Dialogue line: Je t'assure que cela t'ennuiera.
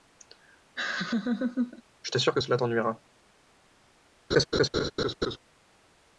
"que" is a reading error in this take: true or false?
false